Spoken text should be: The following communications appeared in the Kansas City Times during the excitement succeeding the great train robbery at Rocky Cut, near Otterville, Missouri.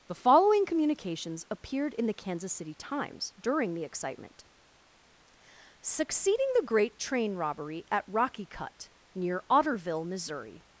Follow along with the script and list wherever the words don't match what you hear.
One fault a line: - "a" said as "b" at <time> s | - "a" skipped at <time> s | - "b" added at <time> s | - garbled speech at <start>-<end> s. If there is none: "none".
none